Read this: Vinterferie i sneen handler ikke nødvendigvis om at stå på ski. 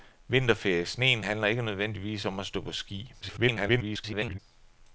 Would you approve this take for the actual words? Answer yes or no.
no